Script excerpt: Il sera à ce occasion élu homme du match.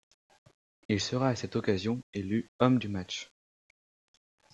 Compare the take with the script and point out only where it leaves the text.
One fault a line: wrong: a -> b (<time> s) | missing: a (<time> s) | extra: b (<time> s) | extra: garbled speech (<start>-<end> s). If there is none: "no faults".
wrong: ce -> cette (1.4 s)